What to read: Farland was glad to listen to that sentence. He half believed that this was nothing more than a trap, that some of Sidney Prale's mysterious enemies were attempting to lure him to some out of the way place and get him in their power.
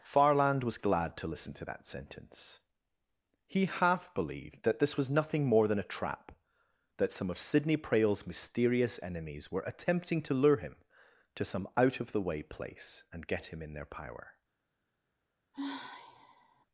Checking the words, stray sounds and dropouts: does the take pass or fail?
fail